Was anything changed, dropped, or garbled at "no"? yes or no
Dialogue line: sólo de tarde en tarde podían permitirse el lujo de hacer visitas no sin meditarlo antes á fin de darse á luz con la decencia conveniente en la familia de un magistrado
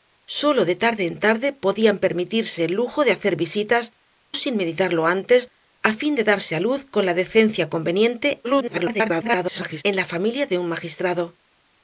yes